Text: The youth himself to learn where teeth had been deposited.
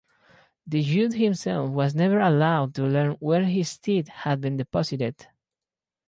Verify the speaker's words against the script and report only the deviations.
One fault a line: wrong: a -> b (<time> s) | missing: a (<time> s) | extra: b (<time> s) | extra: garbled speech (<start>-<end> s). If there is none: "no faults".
extra: was never allowed (1.7 s)
extra: his (3.4 s)